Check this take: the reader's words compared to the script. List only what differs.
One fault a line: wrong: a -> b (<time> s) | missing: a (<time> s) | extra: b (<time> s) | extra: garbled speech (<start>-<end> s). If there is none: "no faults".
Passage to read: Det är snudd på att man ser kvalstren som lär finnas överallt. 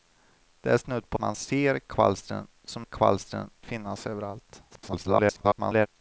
missing: att (1.2 s)
wrong: lär -> kvalstren (2.8 s)
extra: garbled speech (4.7-5.9 s)